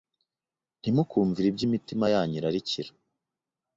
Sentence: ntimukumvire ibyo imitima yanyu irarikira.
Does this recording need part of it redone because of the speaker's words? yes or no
no